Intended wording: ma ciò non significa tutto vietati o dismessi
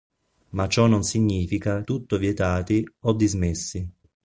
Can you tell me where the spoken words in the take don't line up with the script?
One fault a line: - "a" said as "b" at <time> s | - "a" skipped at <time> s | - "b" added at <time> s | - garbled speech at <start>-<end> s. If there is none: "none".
none